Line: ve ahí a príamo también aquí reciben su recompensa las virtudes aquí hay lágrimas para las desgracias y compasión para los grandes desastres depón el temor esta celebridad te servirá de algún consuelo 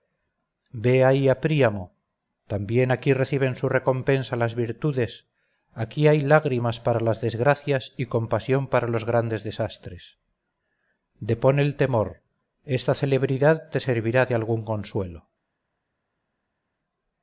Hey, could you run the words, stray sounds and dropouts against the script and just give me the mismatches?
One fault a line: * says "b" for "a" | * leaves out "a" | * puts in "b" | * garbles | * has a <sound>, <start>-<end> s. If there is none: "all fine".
all fine